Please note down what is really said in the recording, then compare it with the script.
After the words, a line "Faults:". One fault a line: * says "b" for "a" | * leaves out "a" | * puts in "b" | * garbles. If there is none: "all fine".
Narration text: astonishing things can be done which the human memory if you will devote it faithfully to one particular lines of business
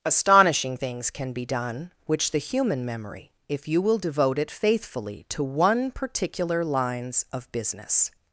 astonishing things can be done which the human memory if you will devote it faithfully to one particular lines of business
Faults:
all fine